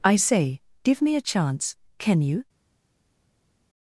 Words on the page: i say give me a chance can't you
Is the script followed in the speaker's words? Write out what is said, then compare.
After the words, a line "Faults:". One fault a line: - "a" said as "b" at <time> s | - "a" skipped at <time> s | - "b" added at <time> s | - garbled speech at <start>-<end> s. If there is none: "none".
i say give me a chance can you
Faults:
- "can't" said as "can" at 2.0 s